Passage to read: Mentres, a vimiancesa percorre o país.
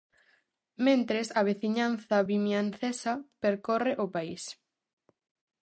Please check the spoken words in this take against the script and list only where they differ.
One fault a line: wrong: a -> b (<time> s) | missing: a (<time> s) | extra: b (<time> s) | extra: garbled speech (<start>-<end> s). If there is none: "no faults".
extra: veciñanza (1.5 s)